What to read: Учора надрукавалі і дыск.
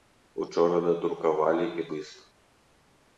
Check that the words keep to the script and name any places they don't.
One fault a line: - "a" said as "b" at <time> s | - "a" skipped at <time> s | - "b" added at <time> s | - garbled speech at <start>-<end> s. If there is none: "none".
none